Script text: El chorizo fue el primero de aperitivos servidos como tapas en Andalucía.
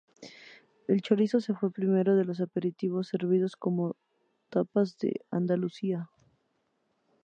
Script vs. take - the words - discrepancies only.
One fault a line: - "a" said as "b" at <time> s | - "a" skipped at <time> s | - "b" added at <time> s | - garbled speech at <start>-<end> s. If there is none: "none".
- "los" added at 2.2 s